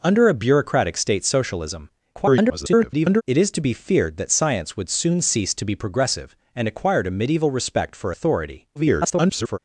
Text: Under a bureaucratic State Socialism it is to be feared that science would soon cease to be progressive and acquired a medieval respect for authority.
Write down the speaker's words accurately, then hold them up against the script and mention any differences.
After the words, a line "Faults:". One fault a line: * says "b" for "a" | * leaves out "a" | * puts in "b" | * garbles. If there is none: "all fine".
Under a bureaucratic State Socialism [garbled] it is to be feared that science would soon cease to be progressive and acquired a medieval respect for authority. [garbled]
Faults:
* garbles
* garbles